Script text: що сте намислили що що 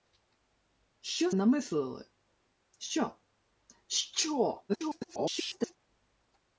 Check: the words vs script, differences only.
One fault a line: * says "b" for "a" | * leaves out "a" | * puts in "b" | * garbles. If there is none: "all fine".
* leaves out "сте"
* garbles